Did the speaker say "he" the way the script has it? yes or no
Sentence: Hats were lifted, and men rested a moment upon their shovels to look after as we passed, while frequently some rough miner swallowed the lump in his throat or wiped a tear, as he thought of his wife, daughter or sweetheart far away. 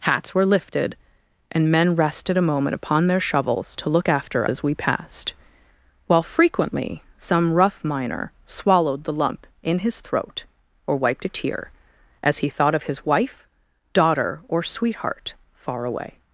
yes